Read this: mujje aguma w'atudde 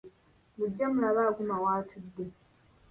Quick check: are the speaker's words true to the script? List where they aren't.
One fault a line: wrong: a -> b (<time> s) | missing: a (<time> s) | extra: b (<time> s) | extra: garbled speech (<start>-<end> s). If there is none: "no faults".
extra: mulabe (0.9 s)